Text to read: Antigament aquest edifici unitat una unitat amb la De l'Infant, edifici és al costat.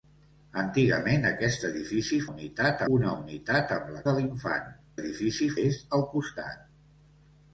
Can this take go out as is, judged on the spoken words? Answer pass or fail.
pass